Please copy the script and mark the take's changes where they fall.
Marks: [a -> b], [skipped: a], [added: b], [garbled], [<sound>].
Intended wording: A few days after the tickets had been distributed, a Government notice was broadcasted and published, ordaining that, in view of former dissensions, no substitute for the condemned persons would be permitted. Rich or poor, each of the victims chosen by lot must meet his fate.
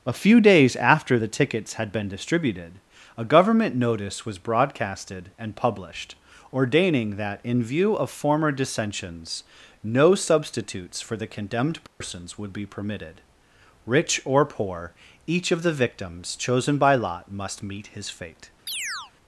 A few days after the tickets had been distributed, a Government notice was broadcasted and published, ordaining that, in view of former dissensions, no [substitute -> substitutes] for the condemned persons [dropout] would be permitted. Rich or poor, each of the victims chosen by lot must meet his fate. [chirp]